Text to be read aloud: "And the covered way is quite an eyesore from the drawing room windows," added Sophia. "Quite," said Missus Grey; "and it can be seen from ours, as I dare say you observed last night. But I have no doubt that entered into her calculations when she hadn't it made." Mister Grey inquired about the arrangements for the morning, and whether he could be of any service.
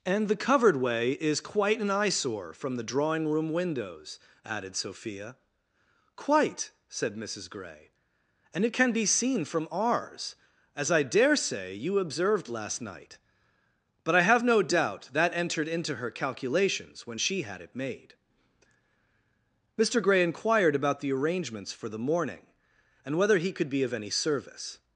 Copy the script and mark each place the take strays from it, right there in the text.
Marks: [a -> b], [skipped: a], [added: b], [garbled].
"And the covered way is quite an eyesore from the drawing room windows," added Sophia. "Quite," said Missus Grey; "and it can be seen from ours, as I dare say you observed last night. But I have no doubt that entered into her calculations when she [hadn't -> had] it made." Mister Grey inquired about the arrangements for the morning, and whether he could be of any service.